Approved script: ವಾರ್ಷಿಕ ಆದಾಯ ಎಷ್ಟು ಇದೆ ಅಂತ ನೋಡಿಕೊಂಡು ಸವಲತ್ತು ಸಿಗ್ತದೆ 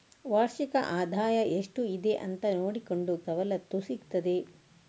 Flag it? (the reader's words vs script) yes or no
no